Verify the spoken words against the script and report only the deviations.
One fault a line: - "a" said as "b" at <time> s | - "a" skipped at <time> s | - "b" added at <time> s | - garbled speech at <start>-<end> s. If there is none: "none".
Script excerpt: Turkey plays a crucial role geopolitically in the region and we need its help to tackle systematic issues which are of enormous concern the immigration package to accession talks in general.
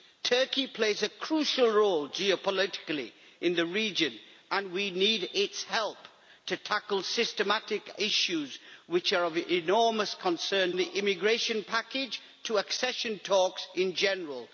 none